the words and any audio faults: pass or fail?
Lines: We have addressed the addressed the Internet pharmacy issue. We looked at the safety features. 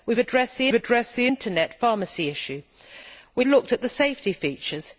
pass